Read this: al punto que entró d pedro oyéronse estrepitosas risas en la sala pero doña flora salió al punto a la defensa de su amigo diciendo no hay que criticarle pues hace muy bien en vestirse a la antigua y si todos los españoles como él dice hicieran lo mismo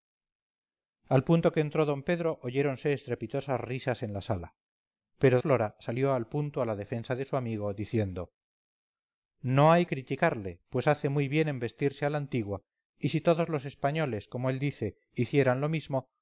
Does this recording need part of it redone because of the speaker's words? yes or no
yes